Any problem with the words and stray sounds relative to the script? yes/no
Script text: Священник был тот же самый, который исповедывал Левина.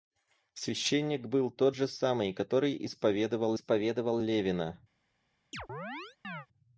yes